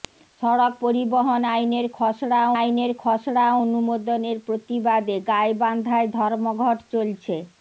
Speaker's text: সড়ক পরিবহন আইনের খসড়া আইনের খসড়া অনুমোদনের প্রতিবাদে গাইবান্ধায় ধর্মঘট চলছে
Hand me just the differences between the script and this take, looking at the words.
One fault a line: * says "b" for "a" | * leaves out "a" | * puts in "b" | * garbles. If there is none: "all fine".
all fine